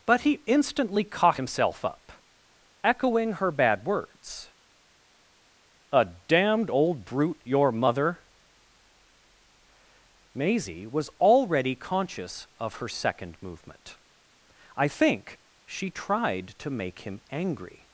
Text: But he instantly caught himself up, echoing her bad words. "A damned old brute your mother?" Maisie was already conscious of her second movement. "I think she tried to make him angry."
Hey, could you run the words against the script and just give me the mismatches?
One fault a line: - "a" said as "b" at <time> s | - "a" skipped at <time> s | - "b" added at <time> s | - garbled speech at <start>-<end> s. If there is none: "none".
none